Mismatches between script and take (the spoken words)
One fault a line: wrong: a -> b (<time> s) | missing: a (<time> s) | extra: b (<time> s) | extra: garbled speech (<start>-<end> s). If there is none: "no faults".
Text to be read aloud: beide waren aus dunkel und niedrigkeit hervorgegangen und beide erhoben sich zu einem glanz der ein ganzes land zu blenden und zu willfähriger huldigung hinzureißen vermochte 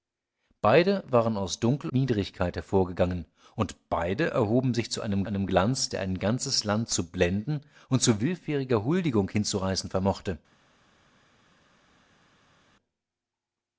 missing: und (1.9 s)
extra: einem (5.2 s)